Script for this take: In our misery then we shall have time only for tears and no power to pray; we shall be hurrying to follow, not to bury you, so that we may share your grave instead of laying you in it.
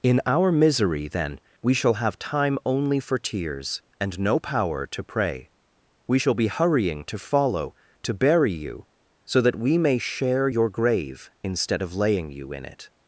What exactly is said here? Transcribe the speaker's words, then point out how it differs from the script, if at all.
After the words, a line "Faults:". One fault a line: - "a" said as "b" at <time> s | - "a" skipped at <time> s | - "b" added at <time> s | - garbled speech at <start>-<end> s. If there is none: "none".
In our misery then we shall have time only for tears and no power to pray; we shall be hurrying to follow, to bury you, so that we may share your grave instead of laying you in it.
Faults:
- "not" skipped at 7.8 s